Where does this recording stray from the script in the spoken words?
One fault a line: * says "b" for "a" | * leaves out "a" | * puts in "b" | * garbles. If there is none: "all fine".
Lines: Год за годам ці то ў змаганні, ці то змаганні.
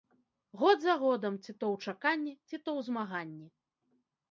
* says "чаканні" for "змаганні"
* puts in "ў"